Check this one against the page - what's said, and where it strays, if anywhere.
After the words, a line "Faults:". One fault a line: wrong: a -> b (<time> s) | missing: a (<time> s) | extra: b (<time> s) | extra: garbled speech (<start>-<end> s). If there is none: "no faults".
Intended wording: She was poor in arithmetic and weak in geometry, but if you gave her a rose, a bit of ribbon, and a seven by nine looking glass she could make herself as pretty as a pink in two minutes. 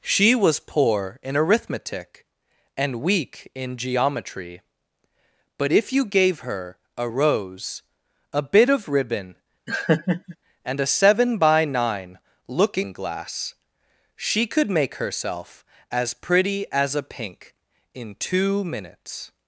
She was poor in arithmetic and weak in geometry, but if you gave her a rose, a bit of ribbon, and a seven by nine looking glass she could make herself as pretty as a pink in two minutes.
Faults:
no faults